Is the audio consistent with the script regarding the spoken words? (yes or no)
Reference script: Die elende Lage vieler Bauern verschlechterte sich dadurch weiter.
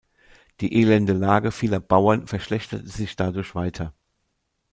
yes